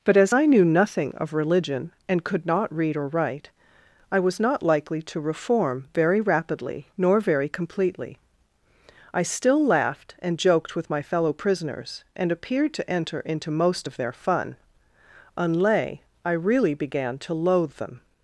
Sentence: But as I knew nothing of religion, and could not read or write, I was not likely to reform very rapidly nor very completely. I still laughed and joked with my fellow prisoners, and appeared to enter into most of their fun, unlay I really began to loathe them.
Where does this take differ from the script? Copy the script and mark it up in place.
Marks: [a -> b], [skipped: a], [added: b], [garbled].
But as I knew nothing of religion, and could not read or write, I was not likely to reform very rapidly nor very completely. I still laughed and joked with my fellow prisoners, and appeared to enter into most of their fun, unlay I really began to loathe them.